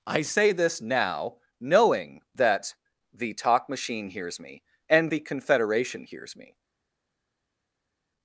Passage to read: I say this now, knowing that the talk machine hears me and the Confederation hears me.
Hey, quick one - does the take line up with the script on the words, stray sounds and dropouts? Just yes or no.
yes